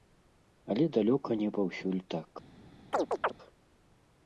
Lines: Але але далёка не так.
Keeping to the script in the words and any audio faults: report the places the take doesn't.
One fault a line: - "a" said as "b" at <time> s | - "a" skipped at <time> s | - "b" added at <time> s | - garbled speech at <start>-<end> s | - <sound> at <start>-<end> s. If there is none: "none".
- "але" skipped at 0.8 s
- "паўсюль" added at 1.6 s
- chirp at 2.9-3.3 s